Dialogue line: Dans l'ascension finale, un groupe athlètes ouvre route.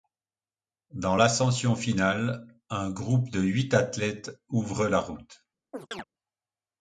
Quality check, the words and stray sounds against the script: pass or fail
fail